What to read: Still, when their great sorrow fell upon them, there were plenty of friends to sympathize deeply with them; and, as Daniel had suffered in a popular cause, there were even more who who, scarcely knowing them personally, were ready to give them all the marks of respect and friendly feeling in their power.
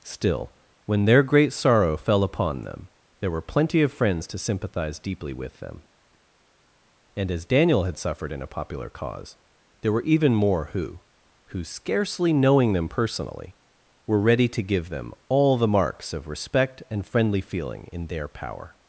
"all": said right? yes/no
yes